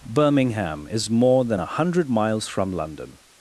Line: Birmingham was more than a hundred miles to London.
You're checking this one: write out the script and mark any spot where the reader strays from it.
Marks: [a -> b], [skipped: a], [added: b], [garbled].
Birmingham [was -> is] more than a hundred miles [to -> from] London.